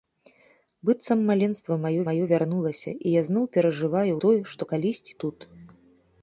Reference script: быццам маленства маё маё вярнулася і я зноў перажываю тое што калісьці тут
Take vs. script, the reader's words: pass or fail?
pass